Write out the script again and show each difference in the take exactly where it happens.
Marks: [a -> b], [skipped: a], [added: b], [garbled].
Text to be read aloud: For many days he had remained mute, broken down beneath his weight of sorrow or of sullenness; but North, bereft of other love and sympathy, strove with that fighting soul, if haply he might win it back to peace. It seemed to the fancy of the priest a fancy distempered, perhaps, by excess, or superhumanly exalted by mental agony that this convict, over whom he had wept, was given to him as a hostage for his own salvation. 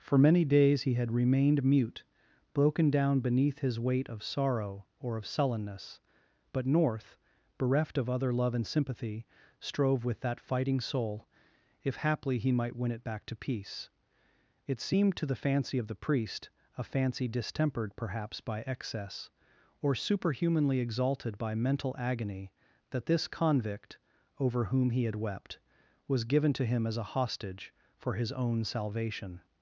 For many days he had remained mute, broken down beneath his weight of sorrow or of sullenness; but North, bereft of other love and sympathy, strove with that fighting soul, if haply he might win it back to peace. It seemed to the fancy of the priest a fancy distempered, perhaps, by excess, or superhumanly exalted by mental agony that this convict, over whom he had wept, was given to him as a hostage for his own salvation.